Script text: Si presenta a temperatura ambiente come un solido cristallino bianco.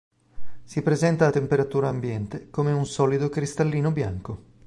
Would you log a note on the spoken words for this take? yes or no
no